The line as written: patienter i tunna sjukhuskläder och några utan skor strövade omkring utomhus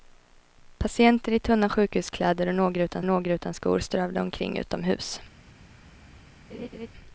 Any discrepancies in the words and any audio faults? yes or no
yes